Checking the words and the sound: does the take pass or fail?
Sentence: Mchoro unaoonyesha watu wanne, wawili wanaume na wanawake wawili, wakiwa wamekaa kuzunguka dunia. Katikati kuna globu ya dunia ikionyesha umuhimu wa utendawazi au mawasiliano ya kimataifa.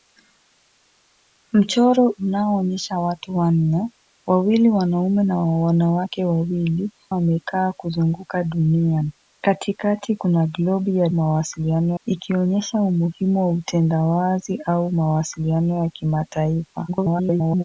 fail